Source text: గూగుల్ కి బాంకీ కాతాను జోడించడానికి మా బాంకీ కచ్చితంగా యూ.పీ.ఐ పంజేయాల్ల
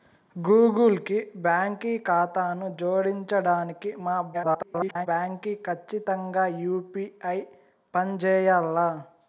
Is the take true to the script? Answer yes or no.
no